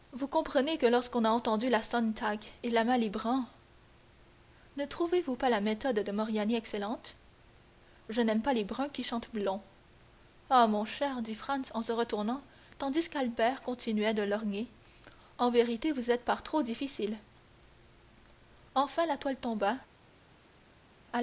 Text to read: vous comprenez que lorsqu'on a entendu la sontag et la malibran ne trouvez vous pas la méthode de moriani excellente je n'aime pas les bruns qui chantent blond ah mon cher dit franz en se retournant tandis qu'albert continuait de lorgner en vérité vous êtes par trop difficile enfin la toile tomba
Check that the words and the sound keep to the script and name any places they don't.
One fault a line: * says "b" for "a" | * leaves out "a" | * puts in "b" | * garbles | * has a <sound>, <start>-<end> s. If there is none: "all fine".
all fine